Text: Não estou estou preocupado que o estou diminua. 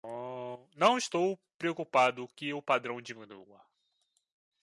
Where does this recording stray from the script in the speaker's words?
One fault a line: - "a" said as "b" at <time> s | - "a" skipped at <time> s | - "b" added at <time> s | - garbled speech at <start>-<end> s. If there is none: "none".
- "estou" skipped at 1.4 s
- "estou" said as "padrão" at 2.6 s